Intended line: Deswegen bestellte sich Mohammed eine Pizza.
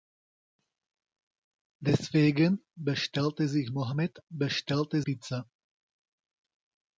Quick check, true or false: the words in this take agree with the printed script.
false